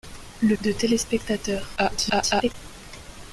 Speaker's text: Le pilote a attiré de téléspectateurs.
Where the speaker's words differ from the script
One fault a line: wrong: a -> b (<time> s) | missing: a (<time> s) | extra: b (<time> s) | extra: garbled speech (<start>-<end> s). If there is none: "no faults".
missing: pilote a attiré (0.6 s)
extra: garbled speech (1.8-2.5 s)